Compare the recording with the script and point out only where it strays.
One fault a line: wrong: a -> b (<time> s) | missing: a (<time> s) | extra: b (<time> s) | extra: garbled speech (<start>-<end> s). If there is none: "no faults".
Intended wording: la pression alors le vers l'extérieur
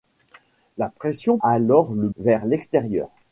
no faults